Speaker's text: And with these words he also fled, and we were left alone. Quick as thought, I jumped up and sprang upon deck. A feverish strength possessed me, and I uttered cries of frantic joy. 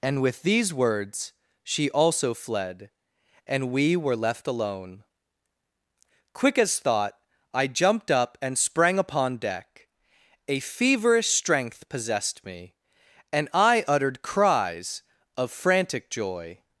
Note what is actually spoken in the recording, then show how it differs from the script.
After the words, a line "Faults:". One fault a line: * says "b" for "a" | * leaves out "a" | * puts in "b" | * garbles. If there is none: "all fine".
And with these words she also fled, and we were left alone. Quick as thought, I jumped up and sprang upon deck. A feverish strength possessed me, and I uttered cries of frantic joy.
Faults:
* says "she" for "he"